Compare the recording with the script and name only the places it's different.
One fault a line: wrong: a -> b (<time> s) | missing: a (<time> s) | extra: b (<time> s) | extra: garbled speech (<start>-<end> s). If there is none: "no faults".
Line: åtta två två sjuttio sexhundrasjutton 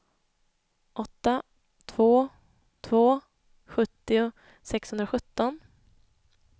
no faults